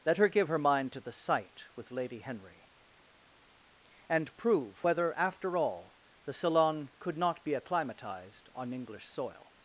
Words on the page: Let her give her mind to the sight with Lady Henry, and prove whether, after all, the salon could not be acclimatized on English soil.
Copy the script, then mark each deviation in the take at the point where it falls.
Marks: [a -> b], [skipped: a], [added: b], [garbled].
Let her give her mind to the sight with Lady Henry, and prove whether, after all, the salon could not be acclimatized on English soil.